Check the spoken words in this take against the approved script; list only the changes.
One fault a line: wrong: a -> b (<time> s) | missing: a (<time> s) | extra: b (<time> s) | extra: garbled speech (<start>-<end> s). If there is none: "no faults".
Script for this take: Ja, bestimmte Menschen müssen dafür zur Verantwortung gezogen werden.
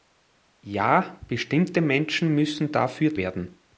missing: zur Verantwortung gezogen (3.1 s)